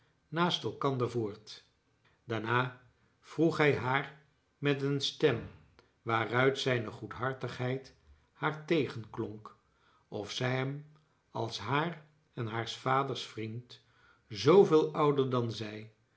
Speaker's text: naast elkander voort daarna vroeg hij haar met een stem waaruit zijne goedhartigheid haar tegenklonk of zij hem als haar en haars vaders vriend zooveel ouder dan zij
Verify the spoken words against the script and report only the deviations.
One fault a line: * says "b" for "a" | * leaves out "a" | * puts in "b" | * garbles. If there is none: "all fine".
all fine